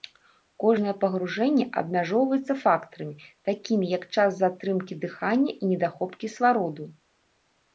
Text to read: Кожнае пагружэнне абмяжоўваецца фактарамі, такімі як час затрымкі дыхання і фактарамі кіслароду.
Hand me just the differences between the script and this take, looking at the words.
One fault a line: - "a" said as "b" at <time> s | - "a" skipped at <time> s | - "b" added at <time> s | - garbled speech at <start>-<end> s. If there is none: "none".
- "фактарамі" said as "недахоп" at 5.7 s